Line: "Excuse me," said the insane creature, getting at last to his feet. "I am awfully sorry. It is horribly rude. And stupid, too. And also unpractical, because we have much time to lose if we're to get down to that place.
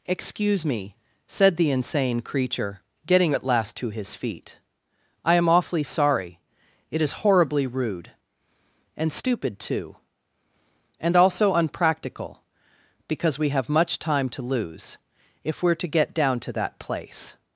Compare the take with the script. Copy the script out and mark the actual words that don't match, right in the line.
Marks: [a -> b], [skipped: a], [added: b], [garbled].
"Excuse me," said the insane creature, getting at last to his feet. "I am awfully sorry. It is horribly rude. And stupid, too. And also unpractical, because we have much time to lose if we're to get down to that place.